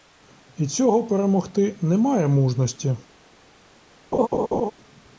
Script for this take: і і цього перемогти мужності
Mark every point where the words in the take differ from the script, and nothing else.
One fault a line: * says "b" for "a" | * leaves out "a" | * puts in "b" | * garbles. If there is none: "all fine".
* leaves out "і"
* puts in "немає"